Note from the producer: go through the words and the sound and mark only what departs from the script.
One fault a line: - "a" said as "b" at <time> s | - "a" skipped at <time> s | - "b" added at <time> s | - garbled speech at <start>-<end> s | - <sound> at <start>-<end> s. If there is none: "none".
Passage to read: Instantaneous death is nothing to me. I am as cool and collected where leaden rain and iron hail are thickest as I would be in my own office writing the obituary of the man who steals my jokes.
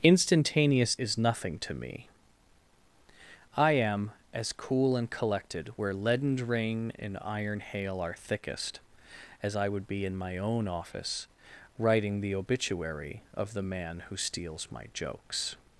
- "death" skipped at 0.9 s